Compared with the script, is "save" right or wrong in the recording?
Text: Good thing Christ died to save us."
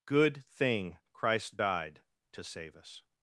right